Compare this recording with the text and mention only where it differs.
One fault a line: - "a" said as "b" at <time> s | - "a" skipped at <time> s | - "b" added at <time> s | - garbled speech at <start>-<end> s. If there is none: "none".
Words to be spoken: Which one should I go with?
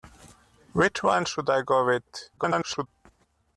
- garbled speech at 2.4-2.9 s